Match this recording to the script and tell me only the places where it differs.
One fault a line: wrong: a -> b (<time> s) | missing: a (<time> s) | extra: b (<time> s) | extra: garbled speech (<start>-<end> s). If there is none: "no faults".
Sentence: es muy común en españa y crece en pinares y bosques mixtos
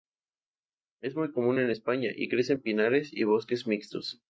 no faults